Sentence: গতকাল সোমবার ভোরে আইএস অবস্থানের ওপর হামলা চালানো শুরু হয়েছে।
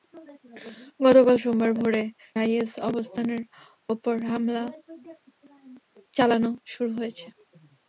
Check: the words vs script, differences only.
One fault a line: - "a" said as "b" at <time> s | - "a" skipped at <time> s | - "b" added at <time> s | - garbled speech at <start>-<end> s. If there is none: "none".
none